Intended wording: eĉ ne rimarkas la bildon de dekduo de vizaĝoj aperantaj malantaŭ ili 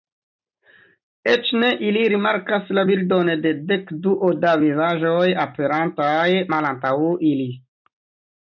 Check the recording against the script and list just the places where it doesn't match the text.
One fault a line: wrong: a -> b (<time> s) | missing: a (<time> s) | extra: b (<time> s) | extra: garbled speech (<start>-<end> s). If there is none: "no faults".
extra: ili (1.9 s)
wrong: de -> da (4.5 s)